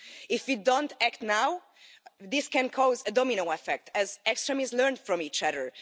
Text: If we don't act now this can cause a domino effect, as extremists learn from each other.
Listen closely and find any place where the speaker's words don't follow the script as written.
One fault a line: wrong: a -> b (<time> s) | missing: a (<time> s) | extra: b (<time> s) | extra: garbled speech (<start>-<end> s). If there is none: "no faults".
no faults